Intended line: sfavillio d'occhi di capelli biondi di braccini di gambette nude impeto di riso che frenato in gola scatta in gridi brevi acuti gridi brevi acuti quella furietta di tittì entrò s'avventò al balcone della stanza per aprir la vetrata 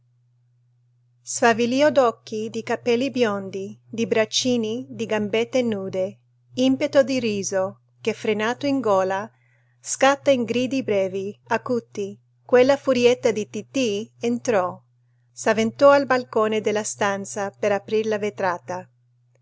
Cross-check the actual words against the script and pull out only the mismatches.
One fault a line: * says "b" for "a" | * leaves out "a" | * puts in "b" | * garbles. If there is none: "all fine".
* leaves out "gridi brevi acuti"